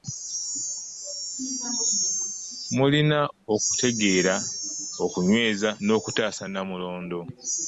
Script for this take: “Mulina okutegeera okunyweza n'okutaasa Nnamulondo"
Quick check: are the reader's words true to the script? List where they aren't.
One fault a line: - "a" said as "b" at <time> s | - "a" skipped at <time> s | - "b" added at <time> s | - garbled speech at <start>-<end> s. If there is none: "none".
none